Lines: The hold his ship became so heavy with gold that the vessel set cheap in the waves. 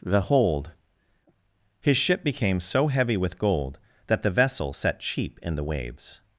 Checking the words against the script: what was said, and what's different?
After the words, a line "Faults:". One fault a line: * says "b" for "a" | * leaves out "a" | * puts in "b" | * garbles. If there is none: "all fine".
The hold his ship became so heavy with gold that the vessel set cheap in the waves.
Faults:
all fine